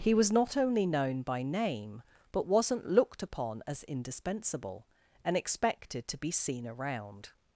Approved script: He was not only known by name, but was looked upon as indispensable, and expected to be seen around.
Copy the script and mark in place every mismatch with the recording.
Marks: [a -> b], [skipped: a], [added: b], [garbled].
He was not only known by name, but [was -> wasn't] looked upon as indispensable, and expected to be seen around.